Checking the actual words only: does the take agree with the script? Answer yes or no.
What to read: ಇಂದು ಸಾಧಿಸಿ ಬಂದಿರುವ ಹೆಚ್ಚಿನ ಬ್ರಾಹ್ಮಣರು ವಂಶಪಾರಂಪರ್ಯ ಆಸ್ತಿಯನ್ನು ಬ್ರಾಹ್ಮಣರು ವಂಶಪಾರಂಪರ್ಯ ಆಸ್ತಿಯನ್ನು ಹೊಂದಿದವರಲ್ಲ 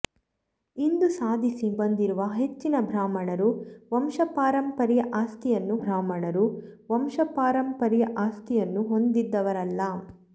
yes